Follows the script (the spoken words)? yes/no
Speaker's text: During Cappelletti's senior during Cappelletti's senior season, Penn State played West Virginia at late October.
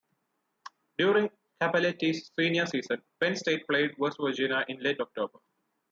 no